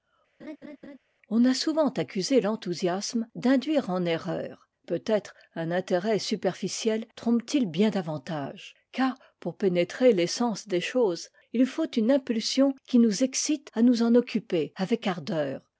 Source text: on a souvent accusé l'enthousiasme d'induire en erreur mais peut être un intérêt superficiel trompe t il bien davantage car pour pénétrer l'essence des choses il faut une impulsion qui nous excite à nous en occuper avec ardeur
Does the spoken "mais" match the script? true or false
false